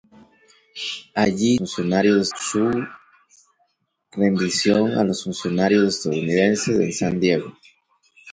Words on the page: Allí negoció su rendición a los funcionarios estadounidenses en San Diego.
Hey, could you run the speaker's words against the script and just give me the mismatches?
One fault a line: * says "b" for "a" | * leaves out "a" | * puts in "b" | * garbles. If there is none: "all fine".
* says "funcionarios" for "negoció"